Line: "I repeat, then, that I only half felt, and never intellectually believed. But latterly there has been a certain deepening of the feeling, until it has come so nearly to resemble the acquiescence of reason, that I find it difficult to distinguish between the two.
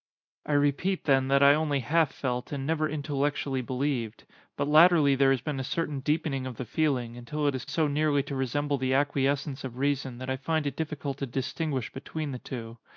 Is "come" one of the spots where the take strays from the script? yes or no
yes